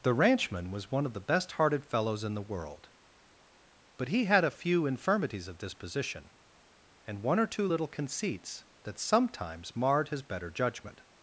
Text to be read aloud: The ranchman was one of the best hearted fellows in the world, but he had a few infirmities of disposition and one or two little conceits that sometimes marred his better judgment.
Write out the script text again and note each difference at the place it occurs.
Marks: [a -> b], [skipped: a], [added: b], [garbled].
The ranchman was one of the best hearted fellows in the world, but he had a few infirmities of disposition and one or two little conceits that sometimes marred his better judgment.